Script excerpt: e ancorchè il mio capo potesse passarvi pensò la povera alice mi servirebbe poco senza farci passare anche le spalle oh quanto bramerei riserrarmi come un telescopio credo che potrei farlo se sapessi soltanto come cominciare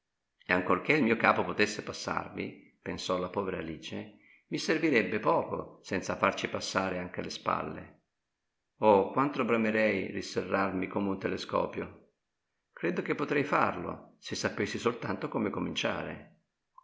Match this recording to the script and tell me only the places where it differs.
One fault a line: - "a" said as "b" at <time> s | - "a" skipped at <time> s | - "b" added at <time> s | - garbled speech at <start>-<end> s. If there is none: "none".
none